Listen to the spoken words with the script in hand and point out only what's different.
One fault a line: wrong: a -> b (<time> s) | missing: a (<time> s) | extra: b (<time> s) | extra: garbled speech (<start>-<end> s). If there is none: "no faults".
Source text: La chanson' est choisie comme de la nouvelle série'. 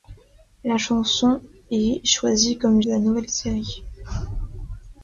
no faults